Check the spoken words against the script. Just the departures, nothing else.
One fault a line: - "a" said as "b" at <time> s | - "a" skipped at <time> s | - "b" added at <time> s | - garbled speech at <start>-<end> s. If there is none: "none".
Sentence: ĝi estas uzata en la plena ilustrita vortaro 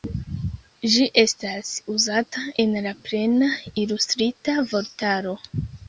none